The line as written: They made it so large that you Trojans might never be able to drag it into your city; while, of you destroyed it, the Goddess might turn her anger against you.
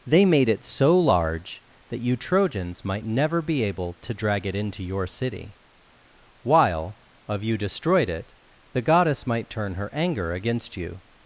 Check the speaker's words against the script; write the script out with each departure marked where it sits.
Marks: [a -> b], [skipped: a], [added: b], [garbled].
They made it so large that you Trojans might never be able to drag it into your city; while, of you destroyed it, the Goddess might turn her anger against you.